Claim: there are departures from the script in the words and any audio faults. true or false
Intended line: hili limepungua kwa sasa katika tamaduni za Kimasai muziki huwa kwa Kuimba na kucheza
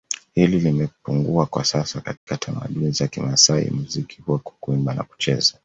true